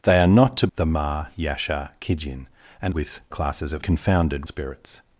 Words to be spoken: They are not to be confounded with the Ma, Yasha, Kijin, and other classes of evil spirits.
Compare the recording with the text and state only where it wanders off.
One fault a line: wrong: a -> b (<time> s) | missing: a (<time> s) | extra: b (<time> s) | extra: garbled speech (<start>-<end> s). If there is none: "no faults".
missing: be confounded with (0.7 s)
wrong: other -> with (2.9 s)
wrong: evil -> confounded (3.8 s)